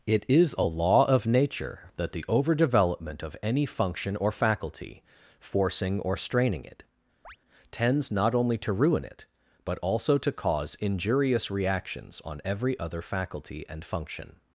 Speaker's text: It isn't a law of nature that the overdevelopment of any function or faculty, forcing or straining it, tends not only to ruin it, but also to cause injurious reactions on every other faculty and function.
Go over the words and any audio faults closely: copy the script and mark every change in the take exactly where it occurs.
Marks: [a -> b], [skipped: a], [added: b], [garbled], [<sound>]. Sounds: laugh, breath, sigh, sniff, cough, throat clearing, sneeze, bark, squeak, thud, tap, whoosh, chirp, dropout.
It [isn't -> is] a law of nature that the overdevelopment of any function or faculty, forcing or straining it, [chirp] tends not only to ruin it, but also to cause injurious reactions on every other faculty and function.